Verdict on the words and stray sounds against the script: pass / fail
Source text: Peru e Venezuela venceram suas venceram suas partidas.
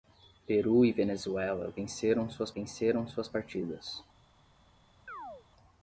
fail